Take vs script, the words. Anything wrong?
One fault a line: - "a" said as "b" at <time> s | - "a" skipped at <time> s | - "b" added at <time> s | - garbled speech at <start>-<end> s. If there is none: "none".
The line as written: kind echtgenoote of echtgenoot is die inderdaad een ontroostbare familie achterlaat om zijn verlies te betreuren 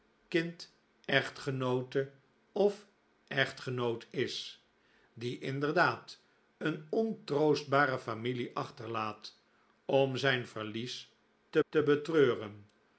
- "te" added at 11.7 s